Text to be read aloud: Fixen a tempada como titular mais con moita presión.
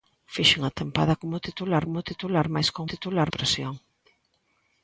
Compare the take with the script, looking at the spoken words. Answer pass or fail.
fail